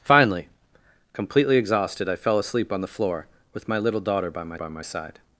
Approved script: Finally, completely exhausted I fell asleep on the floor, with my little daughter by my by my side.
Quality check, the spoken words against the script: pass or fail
pass